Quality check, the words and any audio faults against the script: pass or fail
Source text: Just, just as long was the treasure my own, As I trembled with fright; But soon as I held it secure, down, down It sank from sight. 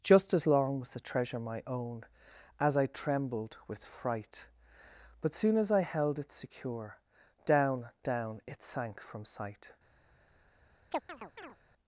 fail